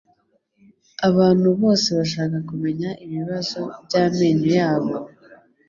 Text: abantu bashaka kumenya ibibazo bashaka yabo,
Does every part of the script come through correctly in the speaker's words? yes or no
no